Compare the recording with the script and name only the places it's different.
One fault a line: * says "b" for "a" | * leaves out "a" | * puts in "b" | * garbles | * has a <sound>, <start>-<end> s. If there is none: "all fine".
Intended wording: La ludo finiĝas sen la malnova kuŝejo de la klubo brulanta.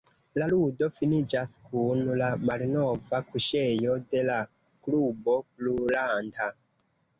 * says "kun" for "sen"